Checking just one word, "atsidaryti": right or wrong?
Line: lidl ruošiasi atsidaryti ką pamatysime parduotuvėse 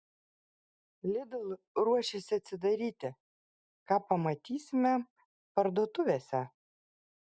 right